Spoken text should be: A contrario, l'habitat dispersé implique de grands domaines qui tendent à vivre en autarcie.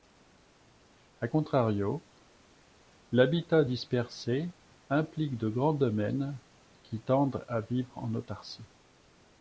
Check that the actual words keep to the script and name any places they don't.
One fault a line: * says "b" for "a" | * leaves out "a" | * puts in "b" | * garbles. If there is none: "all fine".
all fine